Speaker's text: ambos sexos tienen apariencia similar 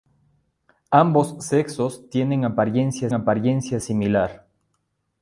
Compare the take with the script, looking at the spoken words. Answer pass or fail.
fail